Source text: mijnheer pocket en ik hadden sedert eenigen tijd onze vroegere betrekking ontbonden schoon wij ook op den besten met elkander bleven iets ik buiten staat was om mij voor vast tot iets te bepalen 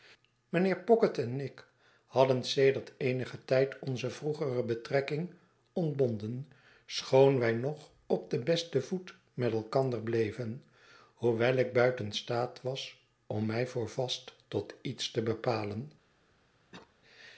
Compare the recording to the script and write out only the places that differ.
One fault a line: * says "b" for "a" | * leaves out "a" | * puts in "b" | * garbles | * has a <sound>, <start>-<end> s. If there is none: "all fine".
* says "nog" for "ook"
* puts in "voet"
* says "hoewel" for "iets"
* has a cough, 16.7-16.9 s